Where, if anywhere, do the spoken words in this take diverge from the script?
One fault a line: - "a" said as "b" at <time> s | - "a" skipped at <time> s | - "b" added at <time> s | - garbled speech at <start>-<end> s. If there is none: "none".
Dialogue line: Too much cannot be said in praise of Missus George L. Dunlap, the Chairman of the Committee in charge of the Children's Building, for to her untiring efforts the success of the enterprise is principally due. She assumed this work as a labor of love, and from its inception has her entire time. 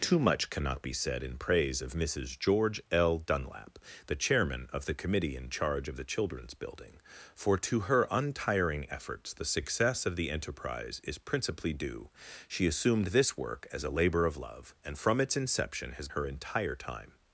none